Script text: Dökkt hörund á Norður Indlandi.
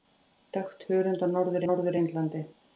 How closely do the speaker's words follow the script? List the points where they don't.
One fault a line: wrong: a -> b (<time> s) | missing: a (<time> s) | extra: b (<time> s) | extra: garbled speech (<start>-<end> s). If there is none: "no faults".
extra: Norður (1.6 s)